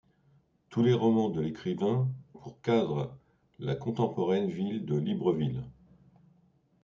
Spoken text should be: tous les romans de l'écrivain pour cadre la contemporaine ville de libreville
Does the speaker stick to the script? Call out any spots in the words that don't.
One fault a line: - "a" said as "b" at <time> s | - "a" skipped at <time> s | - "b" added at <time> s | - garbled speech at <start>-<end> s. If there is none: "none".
none